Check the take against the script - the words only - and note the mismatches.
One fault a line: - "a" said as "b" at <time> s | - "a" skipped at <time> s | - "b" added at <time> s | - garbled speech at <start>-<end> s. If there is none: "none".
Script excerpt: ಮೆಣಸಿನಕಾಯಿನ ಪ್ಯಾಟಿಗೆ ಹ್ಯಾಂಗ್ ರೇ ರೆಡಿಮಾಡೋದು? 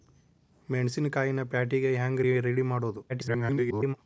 - garbled speech at 3.1-4.0 s